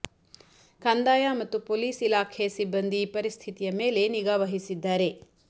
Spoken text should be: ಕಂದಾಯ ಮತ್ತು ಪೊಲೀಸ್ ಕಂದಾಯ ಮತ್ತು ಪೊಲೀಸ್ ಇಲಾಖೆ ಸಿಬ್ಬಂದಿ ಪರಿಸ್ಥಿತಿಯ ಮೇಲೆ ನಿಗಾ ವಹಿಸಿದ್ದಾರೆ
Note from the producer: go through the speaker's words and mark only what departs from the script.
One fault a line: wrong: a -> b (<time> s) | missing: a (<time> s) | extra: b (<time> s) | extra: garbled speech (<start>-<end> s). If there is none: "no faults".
missing: ಕಂದಾಯ ಮತ್ತು ಪೊಲೀಸ್ (2.0 s)